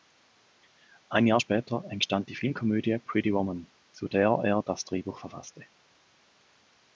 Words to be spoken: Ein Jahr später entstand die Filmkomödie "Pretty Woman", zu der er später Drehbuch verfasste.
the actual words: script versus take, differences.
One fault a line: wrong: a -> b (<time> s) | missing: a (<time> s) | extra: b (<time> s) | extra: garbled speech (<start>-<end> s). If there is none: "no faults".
wrong: später -> das (4.6 s)